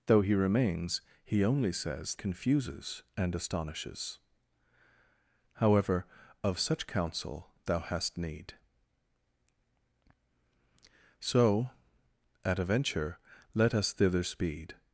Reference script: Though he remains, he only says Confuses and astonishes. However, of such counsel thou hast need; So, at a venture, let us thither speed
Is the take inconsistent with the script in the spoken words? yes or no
no